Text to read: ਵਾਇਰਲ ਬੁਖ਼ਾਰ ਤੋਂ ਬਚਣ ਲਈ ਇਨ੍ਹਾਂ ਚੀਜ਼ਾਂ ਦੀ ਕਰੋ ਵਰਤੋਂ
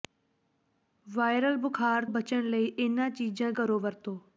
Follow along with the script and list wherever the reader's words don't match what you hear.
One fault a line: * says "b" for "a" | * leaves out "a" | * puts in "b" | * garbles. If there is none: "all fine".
* leaves out "ਤੋਂ"
* leaves out "ਦੀ"